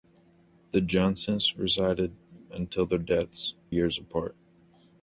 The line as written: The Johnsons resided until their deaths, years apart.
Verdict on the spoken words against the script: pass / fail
pass